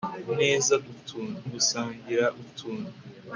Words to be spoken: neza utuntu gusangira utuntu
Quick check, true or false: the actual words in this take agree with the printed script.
true